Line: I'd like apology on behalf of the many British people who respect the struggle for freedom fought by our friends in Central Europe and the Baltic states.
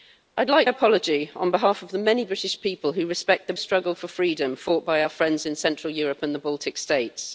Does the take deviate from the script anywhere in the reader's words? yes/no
no